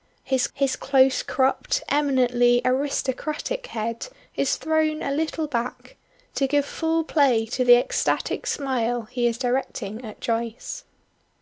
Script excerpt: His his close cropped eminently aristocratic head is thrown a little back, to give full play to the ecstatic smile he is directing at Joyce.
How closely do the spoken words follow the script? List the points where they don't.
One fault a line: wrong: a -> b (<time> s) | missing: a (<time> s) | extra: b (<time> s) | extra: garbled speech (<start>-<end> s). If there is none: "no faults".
no faults